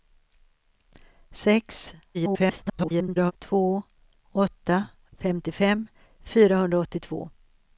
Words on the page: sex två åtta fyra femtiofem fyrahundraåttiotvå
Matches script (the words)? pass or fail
fail